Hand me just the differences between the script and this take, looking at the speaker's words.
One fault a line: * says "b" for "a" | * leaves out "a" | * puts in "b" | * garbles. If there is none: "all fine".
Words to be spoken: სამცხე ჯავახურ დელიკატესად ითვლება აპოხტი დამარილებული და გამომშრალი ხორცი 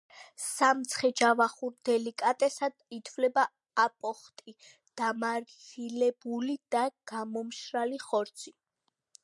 all fine